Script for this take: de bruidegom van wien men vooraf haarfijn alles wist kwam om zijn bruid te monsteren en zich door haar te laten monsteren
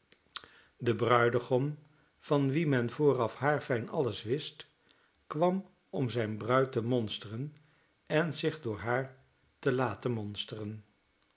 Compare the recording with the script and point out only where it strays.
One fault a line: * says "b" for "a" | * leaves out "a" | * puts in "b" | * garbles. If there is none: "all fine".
all fine